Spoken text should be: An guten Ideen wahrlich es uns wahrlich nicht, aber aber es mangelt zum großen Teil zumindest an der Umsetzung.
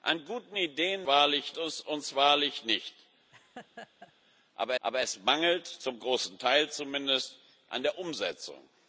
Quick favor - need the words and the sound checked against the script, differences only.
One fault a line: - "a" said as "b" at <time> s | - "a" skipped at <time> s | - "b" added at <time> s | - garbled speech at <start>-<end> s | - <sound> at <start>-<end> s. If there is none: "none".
- laugh at 3.3-4.1 s